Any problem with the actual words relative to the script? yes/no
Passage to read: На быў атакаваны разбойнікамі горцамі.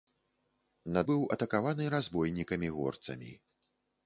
no